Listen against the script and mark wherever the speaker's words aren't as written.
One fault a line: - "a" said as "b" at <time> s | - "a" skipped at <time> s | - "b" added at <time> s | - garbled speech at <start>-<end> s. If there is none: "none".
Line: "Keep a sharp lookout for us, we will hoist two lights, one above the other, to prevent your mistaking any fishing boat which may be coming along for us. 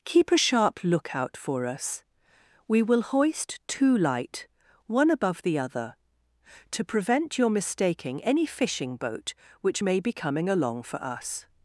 - "lights" said as "light" at 4.0 s